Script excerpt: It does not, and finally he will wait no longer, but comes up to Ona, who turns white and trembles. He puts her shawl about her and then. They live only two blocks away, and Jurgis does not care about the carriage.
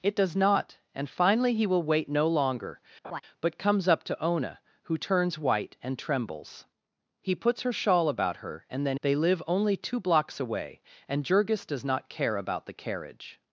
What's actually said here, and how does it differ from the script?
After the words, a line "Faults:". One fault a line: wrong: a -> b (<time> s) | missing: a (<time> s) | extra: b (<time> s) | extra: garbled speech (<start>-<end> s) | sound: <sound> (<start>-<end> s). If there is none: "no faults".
It does not, and finally he will wait no longer, but comes up to Ona, who turns white and trembles. He puts her shawl about her and then. They live only two blocks away, and Jurgis does not care about the carriage.
Faults:
sound: laugh (3.0-3.2 s)